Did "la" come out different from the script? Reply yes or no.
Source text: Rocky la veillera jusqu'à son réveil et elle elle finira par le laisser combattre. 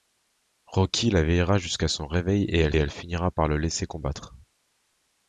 no